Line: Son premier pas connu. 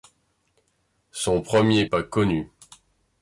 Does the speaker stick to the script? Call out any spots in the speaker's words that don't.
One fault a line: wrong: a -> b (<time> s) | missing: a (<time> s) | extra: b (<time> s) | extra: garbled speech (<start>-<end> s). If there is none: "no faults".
no faults